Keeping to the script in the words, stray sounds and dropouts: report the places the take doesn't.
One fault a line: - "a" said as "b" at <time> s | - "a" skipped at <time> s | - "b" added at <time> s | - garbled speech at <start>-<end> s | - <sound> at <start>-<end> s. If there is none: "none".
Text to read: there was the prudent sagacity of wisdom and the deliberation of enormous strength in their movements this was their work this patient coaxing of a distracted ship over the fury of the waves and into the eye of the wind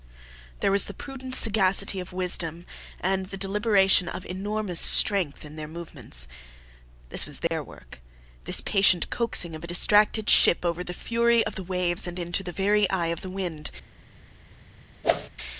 - dropout at 7.5-7.5 s
- "very" added at 12.5 s
- whoosh at 15.0-15.3 s